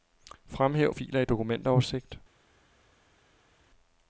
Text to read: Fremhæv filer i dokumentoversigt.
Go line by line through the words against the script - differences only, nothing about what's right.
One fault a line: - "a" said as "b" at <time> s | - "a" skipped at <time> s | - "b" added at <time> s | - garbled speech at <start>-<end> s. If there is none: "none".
none